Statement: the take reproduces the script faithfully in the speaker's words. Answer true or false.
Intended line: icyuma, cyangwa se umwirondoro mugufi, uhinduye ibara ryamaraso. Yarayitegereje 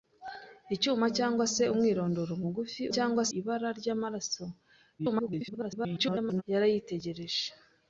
false